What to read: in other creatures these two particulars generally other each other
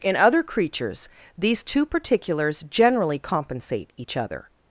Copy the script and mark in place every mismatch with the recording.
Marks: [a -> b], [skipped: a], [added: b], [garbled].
in other creatures these two particulars generally [other -> compensate] each other